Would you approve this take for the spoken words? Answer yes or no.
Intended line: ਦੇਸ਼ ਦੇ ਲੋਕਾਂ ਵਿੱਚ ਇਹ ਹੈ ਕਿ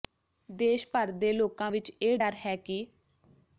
no